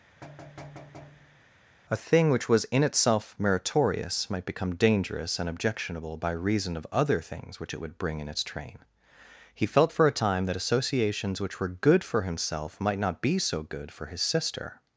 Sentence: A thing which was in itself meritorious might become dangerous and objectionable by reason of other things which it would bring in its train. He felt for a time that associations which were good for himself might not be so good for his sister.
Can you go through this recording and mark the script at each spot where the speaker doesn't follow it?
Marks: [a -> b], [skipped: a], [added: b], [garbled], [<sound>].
[thud] A thing which was in itself meritorious might become dangerous and objectionable by reason of other things which it would bring in its train. He felt for a time that associations which were good for himself might not be so good for his sister.